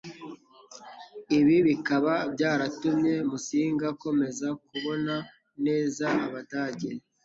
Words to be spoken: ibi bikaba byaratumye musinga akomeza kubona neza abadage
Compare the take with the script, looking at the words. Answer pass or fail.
pass